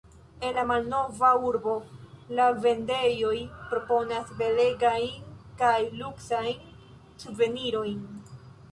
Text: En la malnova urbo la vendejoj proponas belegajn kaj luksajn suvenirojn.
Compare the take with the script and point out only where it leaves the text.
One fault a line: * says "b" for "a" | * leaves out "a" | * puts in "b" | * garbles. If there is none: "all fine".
all fine